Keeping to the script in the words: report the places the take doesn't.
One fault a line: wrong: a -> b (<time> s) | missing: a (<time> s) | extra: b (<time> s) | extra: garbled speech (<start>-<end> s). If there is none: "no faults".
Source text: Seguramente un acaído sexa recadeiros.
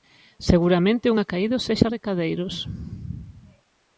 no faults